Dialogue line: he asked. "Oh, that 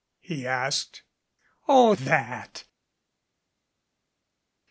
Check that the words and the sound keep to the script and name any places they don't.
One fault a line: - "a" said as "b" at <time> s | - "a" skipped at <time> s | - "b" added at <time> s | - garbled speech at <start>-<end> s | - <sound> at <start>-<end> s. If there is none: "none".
none